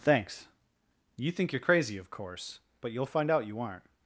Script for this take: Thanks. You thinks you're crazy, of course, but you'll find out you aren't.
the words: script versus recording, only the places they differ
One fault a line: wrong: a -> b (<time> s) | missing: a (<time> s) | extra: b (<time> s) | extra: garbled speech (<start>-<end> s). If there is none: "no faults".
wrong: thinks -> think (1.3 s)